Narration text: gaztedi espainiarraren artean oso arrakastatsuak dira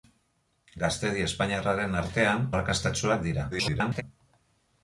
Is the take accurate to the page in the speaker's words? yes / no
no